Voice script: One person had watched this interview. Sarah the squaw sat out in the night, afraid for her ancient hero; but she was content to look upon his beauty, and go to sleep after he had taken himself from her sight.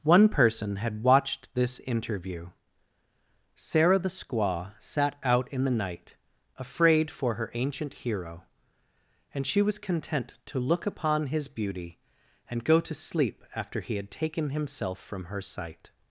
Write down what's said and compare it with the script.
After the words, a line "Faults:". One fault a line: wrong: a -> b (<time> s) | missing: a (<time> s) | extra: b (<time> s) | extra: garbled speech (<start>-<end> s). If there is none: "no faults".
One person had watched this interview. Sarah the squaw sat out in the night, afraid for her ancient hero; and she was content to look upon his beauty, and go to sleep after he had taken himself from her sight.
Faults:
wrong: but -> and (9.3 s)